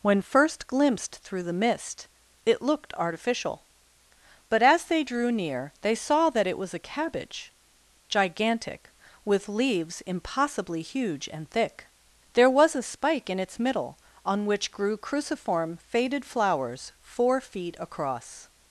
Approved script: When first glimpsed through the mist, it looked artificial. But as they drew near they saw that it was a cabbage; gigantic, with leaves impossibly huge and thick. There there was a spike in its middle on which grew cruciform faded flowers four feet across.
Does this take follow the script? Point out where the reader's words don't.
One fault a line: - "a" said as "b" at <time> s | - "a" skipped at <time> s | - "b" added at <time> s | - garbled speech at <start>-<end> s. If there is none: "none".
- "there" skipped at 12.5 s